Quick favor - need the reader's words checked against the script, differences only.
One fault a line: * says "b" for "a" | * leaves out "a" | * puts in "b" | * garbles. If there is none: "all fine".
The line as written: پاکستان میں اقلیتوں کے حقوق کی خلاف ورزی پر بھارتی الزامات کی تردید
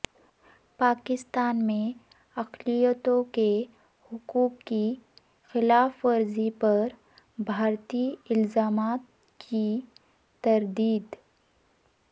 all fine